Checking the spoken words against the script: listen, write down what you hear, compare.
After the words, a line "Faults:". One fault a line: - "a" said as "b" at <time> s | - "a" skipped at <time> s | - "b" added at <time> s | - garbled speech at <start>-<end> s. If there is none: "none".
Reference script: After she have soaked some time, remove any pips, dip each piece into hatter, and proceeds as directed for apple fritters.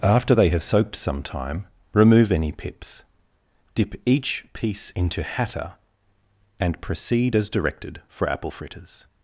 After they have soaked some time, remove any pips, dip each piece into hatter, and proceed as directed for apple fritters.
Faults:
- "she" said as "they" at 0.3 s
- "proceeds" said as "proceed" at 6.8 s